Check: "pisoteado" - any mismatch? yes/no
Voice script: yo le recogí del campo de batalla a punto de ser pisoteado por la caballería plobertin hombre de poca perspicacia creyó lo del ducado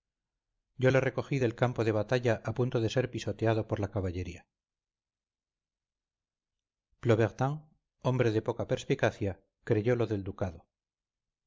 no